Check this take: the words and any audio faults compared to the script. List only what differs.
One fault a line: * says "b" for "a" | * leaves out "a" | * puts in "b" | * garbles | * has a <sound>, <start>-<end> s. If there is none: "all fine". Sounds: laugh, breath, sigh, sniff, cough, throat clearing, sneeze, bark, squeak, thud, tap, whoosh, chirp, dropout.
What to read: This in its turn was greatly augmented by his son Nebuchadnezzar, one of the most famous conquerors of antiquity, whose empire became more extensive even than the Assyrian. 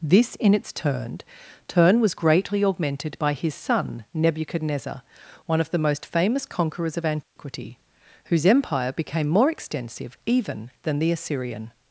* puts in "turn"
* has a dropout, 7.2-7.4 s